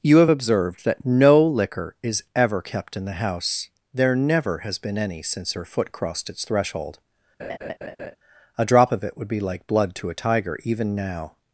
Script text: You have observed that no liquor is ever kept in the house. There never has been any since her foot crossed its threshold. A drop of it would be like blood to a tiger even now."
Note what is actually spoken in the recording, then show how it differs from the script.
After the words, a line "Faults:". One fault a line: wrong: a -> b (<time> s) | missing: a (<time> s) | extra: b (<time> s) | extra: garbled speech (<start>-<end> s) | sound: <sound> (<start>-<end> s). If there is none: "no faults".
You have observed that no liquor is ever kept in the house. There never has been any since her foot crossed its threshold. A drop of it would be like blood to a tiger even now."
Faults:
sound: laugh (7.4-8.2 s)